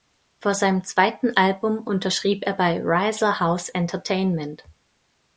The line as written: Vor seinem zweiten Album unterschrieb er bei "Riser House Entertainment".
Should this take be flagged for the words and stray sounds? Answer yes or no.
no